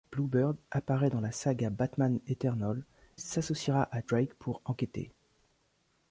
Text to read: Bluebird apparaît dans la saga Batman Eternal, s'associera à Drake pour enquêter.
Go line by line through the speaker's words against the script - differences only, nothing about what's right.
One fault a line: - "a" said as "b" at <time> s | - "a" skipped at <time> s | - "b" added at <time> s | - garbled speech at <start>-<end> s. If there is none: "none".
none